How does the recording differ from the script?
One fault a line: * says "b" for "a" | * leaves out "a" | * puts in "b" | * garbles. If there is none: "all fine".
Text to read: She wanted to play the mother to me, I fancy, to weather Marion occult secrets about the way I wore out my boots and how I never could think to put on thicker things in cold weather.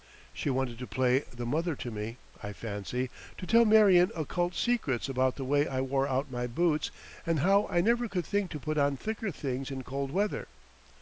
* says "tell" for "weather"